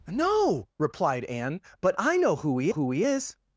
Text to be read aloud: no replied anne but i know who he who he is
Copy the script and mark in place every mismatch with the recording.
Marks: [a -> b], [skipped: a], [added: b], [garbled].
no replied anne but i know who he who he is